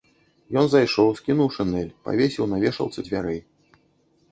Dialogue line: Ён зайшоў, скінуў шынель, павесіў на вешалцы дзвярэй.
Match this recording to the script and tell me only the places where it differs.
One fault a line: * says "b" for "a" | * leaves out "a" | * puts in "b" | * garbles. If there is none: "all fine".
all fine